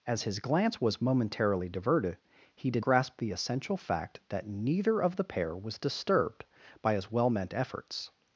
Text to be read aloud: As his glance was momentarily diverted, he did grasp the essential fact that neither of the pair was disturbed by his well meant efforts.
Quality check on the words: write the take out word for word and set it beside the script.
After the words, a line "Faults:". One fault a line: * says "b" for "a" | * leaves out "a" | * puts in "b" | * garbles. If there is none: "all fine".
As his glance was momentarily diverted, he did grasp the essential fact that neither of the pair was disturbed by his well meant efforts.
Faults:
all fine